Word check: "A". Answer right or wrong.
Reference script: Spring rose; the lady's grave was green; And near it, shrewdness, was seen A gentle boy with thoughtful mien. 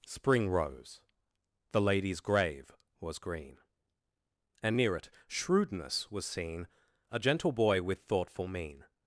right